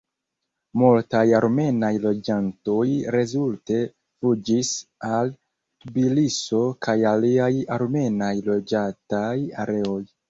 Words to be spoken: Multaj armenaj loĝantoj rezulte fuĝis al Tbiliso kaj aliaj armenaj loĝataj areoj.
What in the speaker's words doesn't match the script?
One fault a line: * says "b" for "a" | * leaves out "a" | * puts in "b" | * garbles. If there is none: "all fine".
all fine